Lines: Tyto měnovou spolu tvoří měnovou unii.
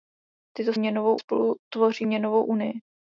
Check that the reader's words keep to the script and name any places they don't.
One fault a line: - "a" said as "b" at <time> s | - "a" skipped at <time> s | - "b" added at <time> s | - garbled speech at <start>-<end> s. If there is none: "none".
none